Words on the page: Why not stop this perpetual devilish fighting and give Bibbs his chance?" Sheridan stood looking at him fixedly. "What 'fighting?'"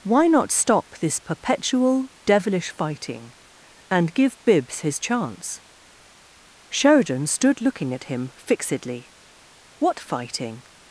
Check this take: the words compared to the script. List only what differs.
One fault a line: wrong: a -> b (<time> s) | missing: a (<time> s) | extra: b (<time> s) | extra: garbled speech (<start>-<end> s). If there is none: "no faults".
no faults